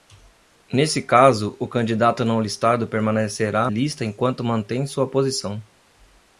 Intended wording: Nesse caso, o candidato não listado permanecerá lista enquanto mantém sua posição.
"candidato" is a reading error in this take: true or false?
false